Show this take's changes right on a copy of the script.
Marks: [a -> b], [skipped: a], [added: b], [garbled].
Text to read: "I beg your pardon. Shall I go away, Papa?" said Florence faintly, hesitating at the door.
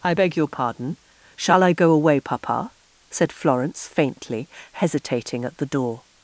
"I beg your pardon. Shall I go away, Papa?" said Florence faintly, hesitating at the door.